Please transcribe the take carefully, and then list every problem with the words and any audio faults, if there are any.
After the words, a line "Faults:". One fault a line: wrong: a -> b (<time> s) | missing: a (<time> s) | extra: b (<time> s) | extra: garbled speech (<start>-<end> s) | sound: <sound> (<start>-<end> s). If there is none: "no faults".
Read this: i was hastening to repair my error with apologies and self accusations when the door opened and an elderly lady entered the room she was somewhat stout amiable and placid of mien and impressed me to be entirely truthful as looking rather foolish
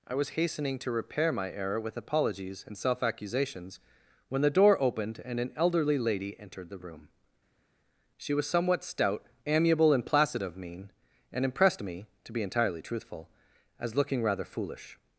i was hastening to repair my error with apologies and self accusations when the door opened and an elderly lady entered the room she was somewhat stout amiable and placid of mien and impressed me to be entirely truthful as looking rather foolish
Faults:
no faults